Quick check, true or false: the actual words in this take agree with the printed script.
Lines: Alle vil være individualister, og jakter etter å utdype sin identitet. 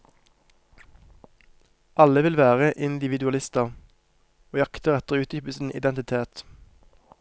true